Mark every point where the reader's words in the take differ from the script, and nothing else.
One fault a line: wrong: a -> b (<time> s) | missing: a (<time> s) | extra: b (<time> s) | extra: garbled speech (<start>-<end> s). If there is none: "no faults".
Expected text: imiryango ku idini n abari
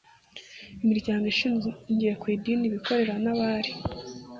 extra: ishingiye (1.3 s)
extra: abikorera (2.7 s)